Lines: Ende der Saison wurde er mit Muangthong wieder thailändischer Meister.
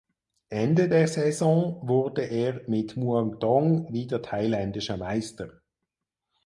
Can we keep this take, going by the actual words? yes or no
yes